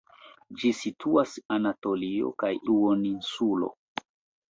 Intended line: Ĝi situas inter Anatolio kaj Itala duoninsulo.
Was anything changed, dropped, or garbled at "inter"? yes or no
yes